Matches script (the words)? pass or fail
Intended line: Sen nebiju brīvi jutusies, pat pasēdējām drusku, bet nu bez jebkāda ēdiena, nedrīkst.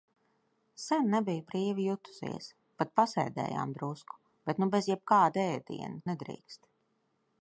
pass